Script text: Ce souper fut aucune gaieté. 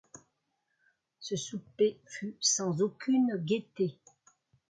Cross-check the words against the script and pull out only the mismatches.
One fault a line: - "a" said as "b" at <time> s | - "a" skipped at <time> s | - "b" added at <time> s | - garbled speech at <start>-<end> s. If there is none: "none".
- "sans" added at 2.4 s